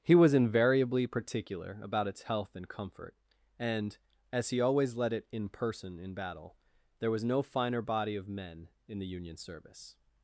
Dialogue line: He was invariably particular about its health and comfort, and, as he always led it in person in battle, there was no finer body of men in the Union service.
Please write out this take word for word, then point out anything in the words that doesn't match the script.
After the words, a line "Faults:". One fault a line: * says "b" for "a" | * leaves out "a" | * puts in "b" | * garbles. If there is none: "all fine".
He was invariably particular about its health and comfort, and, as he always led it in person in battle, there was no finer body of men in the Union service.
Faults:
all fine